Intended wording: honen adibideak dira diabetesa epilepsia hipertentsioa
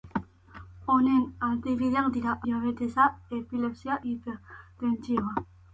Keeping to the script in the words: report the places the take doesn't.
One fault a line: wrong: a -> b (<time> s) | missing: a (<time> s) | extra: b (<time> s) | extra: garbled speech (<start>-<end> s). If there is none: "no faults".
no faults